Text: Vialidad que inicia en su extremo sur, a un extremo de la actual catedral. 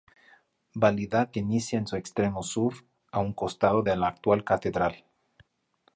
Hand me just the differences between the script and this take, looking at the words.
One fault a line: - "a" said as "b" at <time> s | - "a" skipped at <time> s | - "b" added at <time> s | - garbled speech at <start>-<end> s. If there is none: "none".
- "extremo" said as "costado" at 3.3 s